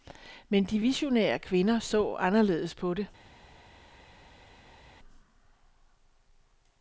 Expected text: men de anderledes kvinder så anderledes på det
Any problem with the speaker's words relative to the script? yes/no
yes